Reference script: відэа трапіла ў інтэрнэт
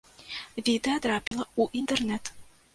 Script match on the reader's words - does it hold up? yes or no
yes